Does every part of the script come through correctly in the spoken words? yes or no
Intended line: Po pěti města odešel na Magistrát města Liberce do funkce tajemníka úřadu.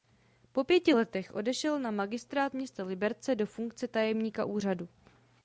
no